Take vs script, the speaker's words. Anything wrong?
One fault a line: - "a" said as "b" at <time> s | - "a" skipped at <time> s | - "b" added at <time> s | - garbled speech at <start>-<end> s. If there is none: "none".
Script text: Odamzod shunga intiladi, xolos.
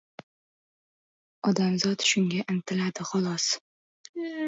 none